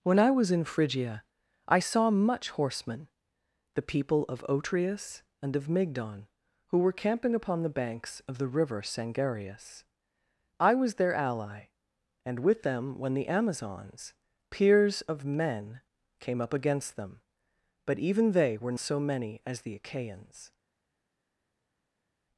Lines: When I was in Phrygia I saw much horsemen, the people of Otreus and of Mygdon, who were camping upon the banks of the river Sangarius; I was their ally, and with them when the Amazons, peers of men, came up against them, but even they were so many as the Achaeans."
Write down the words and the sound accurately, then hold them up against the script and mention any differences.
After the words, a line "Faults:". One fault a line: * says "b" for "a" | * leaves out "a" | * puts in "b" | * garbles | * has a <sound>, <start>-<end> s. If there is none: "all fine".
When I was in Phrygia I saw much horsemen, the people of Otreus and of Mygdon, who were camping upon the banks of the river Sangarius; I was their ally, and with them when the Amazons, peers of men, came up against them, but even they were so many as the Achaeans."
Faults:
all fine